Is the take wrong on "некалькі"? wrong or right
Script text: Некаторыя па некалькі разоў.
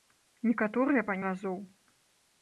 wrong